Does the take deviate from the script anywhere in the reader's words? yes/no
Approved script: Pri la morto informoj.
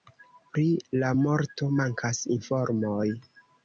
yes